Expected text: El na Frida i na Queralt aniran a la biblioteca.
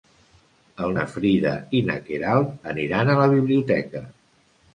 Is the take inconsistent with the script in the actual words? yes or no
no